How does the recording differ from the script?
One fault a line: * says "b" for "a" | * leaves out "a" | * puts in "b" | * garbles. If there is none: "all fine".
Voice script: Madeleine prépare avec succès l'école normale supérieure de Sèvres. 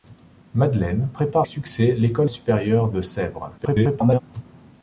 * leaves out "avec"
* leaves out "normale"
* garbles